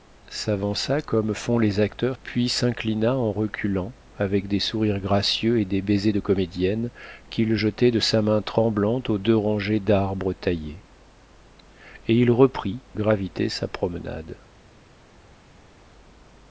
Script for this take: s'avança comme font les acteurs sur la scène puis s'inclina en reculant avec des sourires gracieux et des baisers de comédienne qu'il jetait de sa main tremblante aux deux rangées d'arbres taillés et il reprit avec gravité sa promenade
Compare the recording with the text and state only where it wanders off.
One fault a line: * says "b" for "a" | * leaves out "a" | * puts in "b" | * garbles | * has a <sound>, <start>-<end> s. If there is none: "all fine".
* leaves out "sur la scène"
* leaves out "avec"